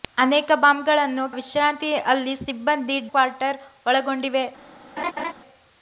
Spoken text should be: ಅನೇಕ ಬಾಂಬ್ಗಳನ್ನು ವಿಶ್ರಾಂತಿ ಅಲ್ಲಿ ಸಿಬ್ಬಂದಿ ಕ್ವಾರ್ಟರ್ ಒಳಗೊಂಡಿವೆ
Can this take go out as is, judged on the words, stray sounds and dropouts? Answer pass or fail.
fail